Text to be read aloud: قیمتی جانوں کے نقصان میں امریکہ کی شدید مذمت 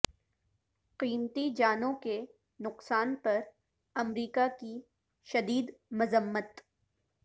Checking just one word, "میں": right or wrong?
wrong